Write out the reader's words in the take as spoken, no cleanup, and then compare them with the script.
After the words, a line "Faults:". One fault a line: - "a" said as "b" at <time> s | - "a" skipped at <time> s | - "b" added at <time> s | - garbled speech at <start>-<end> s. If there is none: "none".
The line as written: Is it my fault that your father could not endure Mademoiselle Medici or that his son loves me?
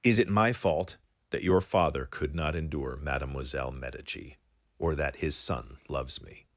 Is it my fault that your father could not endure Mademoiselle Medici or that his son loves me?
Faults:
none